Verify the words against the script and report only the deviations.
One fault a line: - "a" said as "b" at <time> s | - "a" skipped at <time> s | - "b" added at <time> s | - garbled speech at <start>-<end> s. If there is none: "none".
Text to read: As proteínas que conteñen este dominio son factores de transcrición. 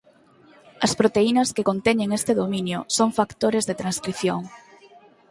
none